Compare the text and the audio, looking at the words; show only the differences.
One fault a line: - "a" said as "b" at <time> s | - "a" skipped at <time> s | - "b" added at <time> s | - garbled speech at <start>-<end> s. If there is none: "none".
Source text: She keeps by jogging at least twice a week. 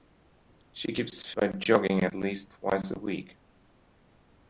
none